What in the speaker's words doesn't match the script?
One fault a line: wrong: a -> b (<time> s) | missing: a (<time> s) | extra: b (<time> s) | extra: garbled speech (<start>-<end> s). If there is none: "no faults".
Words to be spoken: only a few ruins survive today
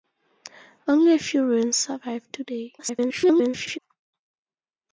extra: garbled speech (2.8-3.8 s)